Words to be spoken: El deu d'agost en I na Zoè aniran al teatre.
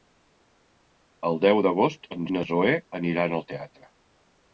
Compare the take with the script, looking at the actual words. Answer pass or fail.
pass